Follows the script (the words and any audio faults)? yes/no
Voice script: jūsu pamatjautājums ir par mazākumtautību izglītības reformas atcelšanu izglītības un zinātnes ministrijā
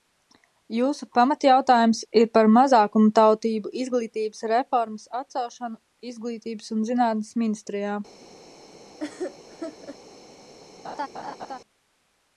no